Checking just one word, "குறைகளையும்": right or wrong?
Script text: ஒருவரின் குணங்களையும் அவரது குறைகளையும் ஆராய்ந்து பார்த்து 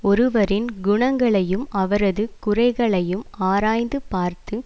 right